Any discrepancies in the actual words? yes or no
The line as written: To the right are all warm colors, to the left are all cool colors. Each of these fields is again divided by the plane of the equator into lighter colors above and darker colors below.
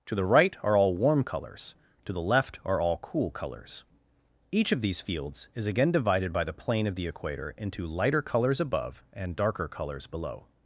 no